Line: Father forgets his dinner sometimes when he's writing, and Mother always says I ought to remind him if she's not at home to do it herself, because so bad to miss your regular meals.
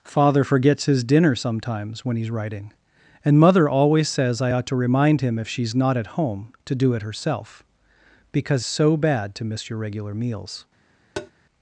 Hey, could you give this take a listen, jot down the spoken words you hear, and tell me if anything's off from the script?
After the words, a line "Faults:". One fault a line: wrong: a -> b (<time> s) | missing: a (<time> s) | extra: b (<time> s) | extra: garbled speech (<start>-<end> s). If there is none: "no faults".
Father forgets his dinner sometimes when he's writing, and Mother always says I ought to remind him if she's not at home to do it herself, because so bad to miss your regular meals.
Faults:
no faults